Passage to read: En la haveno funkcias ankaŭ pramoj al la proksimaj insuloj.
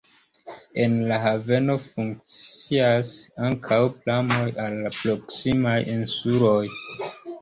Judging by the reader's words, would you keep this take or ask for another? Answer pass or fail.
pass